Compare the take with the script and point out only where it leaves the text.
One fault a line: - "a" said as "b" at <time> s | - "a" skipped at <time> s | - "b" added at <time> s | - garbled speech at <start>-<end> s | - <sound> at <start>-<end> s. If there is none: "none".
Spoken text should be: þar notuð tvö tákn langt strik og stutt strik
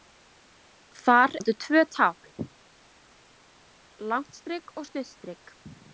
none